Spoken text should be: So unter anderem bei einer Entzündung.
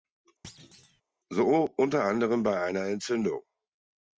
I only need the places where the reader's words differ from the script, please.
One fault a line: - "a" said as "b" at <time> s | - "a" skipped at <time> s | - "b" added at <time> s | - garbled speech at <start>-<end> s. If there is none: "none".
none